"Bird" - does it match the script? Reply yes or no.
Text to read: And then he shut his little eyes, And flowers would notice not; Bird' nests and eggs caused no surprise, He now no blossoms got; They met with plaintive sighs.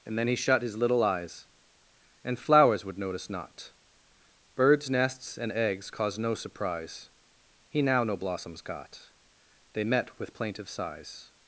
no